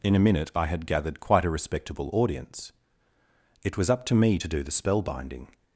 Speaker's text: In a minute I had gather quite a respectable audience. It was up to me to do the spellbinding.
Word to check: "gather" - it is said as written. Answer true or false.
false